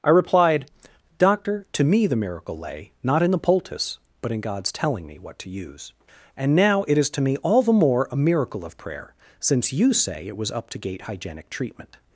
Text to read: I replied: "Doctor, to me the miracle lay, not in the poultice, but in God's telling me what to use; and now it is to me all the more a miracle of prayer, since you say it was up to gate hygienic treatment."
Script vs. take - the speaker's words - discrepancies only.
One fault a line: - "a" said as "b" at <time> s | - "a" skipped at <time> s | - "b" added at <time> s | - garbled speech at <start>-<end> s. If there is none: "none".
none